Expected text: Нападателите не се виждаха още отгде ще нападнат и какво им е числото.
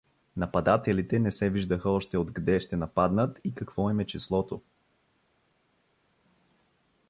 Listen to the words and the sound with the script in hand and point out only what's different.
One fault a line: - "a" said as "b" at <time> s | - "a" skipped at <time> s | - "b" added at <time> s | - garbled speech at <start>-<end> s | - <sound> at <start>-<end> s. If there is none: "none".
none